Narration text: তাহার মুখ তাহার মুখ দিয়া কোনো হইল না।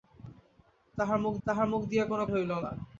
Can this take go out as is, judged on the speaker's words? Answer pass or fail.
pass